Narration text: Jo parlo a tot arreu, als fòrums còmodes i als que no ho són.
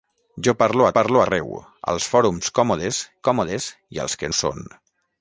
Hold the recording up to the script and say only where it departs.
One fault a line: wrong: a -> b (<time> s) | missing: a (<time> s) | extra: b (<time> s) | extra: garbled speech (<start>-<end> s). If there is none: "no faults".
wrong: tot -> parlo (1.0 s)
extra: còmodes (3.3 s)
missing: no (4.3 s)